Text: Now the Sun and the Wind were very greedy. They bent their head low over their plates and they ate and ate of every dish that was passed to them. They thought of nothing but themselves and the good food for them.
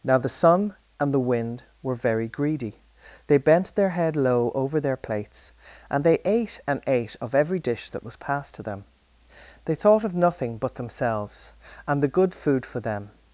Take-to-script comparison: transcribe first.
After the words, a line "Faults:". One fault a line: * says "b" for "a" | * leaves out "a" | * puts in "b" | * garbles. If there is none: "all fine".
Now the Sun and the Wind were very greedy. They bent their head low over their plates and they ate and ate of every dish that was passed to them. They thought of nothing but themselves and the good food for them.
Faults:
all fine